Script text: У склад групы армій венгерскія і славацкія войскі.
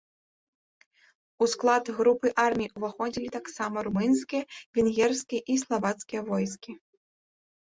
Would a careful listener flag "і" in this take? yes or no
no